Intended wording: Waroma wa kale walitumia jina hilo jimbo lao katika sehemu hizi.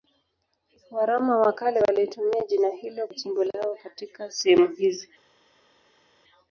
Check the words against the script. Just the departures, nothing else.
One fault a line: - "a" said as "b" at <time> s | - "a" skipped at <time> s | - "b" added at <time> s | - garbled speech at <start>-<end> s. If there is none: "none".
none